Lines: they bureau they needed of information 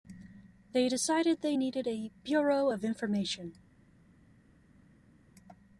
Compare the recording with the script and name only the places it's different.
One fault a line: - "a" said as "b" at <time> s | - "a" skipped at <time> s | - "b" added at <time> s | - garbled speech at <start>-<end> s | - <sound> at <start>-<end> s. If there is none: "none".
- "bureau" said as "decided" at 0.9 s
- "a bureau" added at 1.9 s